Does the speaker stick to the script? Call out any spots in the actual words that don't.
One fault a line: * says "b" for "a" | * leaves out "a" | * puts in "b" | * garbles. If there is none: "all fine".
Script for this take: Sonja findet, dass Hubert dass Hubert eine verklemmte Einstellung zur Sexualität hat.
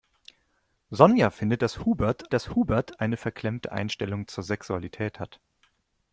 all fine